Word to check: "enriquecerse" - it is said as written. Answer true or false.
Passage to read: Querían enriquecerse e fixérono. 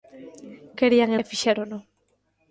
false